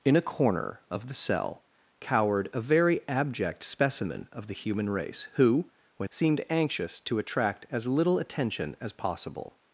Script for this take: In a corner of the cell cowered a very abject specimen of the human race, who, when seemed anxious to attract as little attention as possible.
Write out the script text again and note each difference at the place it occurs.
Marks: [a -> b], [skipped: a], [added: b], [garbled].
In a corner of the cell cowered a very abject specimen of the human race, who, when seemed anxious to attract as little attention as possible.